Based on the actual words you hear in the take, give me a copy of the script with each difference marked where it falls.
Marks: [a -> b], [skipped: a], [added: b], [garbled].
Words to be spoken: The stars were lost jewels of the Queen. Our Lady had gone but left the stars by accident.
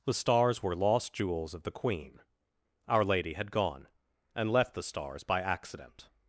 The stars were lost jewels of the Queen. Our Lady had gone [but -> and] left the stars by accident.